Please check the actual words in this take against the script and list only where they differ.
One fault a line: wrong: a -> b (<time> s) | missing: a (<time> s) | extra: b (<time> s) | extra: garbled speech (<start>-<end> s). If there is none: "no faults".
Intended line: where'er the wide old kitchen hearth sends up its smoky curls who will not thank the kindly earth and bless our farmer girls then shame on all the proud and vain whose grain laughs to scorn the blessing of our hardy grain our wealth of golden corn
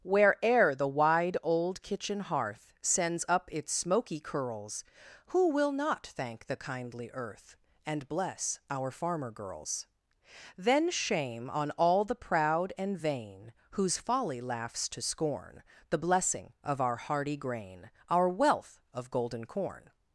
wrong: grain -> folly (14.0 s)